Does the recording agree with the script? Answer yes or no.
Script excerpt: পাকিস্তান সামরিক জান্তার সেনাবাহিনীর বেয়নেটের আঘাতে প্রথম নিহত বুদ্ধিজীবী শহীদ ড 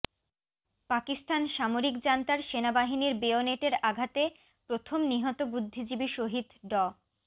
yes